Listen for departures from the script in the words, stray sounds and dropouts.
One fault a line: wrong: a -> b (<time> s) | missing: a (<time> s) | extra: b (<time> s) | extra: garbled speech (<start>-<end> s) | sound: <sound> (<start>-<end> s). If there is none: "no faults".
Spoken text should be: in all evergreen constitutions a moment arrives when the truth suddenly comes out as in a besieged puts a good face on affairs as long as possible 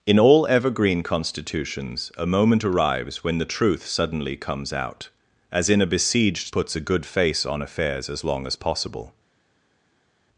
no faults